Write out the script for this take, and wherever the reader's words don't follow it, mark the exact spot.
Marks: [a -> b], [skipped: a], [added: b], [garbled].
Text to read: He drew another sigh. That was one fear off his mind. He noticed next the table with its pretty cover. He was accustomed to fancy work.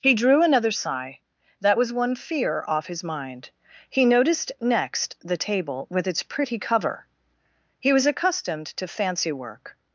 He drew another sigh. That was one fear off his mind. He noticed next the table with its pretty cover. He was accustomed to fancy work.